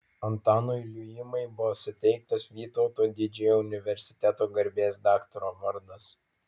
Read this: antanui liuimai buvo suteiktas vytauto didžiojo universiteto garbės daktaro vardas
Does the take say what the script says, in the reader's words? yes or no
yes